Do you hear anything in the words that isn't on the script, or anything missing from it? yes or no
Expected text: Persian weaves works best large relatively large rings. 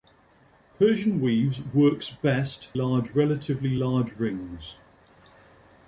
no